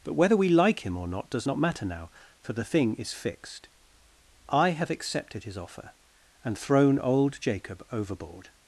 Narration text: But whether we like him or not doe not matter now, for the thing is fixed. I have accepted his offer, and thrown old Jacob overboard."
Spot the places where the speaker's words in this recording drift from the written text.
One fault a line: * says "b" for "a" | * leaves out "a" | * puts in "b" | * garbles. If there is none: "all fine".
* says "does" for "doe"